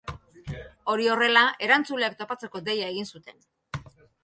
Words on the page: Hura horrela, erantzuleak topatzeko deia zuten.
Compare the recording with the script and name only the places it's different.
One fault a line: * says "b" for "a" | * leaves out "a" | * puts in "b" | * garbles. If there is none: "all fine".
* says "Hori" for "Hura"
* puts in "egin"